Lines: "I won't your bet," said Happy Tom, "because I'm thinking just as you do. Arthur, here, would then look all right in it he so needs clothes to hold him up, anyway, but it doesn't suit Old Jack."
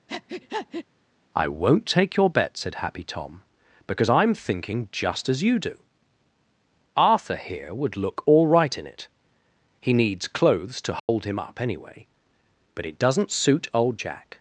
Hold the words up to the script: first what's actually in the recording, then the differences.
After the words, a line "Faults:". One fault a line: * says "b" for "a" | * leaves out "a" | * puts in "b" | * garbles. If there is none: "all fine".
"I won't take your bet," said Happy Tom, "because I'm thinking just as you do. Arthur, here, would look all right in it he needs clothes to hold him up, anyway, but it doesn't suit Old Jack."
Faults:
* puts in "take"
* leaves out "then"
* leaves out "so"